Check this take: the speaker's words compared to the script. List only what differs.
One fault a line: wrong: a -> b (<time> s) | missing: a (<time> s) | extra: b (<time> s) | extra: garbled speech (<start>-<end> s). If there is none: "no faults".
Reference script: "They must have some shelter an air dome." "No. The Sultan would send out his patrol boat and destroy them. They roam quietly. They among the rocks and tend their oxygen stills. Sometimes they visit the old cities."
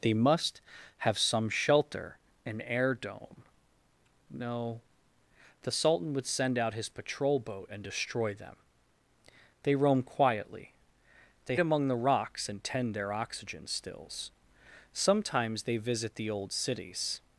no faults